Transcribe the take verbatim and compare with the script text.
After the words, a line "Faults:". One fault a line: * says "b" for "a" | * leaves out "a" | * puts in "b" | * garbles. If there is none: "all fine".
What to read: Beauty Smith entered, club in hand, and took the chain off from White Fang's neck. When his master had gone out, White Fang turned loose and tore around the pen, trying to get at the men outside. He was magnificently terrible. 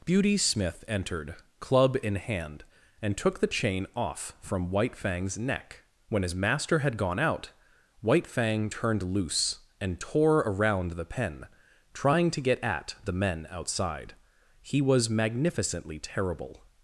Beauty Smith entered, club in hand, and took the chain off from White Fang's neck. When his master had gone out, White Fang turned loose and tore around the pen, trying to get at the men outside. He was magnificently terrible.
Faults:
all fine